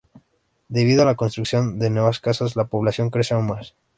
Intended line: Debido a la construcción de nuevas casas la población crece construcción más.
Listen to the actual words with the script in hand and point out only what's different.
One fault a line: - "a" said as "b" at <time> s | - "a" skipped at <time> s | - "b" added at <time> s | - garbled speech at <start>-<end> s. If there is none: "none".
- "construcción" said as "aún" at 3.3 s